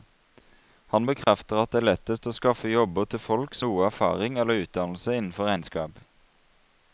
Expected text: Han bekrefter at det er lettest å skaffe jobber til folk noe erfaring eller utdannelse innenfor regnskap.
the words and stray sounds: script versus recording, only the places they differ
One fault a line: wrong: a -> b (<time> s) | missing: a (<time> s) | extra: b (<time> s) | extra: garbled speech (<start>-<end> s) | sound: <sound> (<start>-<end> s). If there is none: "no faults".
sound: dropout (1.2-1.3 s)